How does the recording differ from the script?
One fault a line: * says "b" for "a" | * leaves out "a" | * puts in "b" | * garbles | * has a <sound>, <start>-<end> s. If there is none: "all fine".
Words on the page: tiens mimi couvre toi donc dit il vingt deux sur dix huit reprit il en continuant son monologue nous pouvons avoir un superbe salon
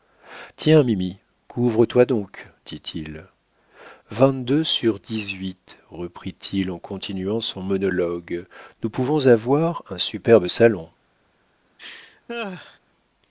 * has a laugh, 11.8-12.8 s